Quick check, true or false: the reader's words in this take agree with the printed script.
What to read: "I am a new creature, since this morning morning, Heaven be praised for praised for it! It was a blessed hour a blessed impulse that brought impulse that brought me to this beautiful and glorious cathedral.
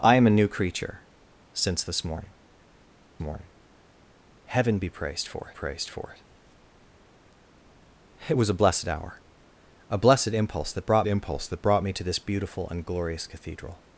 true